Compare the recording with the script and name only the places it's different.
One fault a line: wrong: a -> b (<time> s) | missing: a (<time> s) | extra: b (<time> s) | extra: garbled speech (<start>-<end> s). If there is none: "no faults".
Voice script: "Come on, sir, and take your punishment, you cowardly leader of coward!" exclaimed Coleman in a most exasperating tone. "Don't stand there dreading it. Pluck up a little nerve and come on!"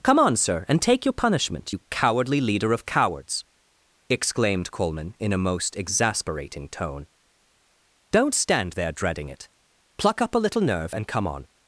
wrong: coward -> cowards (2.8 s)